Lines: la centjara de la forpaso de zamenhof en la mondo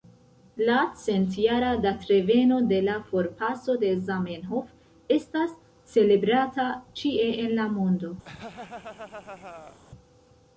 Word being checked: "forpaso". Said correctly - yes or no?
yes